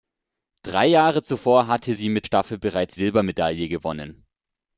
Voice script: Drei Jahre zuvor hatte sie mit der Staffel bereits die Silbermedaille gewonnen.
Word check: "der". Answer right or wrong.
wrong